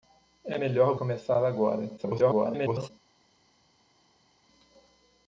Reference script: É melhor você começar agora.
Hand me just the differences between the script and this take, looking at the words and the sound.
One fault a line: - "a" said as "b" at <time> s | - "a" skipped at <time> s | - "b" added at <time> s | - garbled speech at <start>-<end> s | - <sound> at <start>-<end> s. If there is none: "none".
- "você" skipped at 1.0 s
- garbled speech at 2.0-2.9 s